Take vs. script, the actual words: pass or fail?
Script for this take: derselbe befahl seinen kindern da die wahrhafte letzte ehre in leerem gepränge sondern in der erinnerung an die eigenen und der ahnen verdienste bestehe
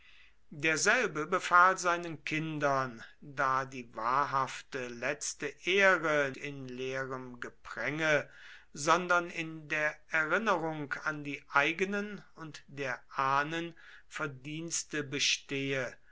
pass